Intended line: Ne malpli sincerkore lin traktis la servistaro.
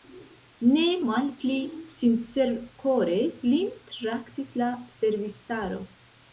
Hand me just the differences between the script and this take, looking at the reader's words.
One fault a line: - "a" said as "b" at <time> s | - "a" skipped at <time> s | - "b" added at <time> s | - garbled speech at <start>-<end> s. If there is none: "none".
none